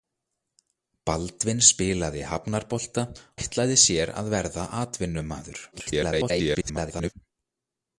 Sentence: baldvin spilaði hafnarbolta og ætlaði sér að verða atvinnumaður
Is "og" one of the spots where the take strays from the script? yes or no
yes